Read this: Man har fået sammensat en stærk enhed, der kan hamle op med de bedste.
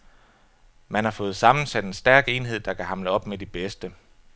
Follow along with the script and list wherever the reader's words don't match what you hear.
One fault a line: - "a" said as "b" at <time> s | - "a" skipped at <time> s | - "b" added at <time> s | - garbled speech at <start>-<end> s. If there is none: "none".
none